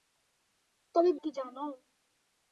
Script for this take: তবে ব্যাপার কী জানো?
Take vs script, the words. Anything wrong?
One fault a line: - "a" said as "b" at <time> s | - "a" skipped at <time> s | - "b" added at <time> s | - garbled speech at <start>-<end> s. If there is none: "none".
- "ব্যাপার" skipped at 1.1 s